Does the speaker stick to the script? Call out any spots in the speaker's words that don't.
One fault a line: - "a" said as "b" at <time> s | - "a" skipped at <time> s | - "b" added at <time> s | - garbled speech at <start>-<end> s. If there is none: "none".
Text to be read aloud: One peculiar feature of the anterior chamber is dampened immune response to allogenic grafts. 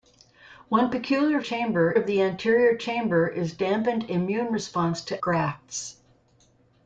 - "feature" said as "chamber" at 1.4 s
- "allogenic" skipped at 5.2 s